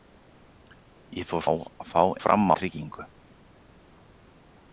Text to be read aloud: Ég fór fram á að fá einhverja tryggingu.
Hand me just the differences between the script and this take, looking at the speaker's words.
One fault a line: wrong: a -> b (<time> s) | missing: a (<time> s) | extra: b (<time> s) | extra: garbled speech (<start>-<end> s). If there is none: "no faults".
missing: fram (1.4 s)
wrong: einhverja -> fram (2.2 s)